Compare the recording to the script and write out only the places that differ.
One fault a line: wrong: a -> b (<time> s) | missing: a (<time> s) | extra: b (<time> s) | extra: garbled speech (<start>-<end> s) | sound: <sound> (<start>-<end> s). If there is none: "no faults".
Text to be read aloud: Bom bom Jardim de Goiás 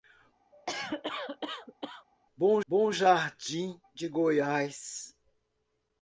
sound: cough (0.5-2.1 s)